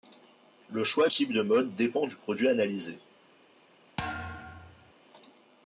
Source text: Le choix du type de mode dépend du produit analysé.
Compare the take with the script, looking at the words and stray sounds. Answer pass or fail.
fail